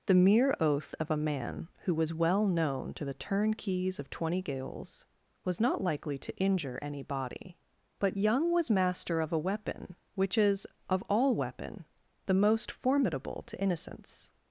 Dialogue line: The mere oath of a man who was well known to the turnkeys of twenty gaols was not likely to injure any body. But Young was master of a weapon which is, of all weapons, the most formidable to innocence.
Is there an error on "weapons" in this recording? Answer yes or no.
yes